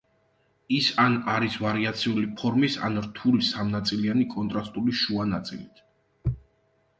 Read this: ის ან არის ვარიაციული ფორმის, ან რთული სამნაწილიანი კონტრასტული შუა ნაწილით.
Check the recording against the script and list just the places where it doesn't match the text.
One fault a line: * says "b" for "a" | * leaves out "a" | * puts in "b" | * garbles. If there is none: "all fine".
all fine